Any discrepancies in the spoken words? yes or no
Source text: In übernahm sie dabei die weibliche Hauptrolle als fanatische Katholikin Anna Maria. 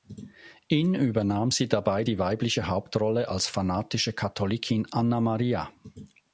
no